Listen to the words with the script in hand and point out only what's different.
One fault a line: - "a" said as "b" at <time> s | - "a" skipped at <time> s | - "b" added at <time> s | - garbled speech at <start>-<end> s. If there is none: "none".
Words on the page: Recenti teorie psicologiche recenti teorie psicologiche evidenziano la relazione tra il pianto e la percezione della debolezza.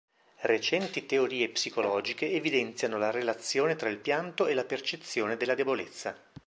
- "recenti teorie psicologiche" skipped at 2.3 s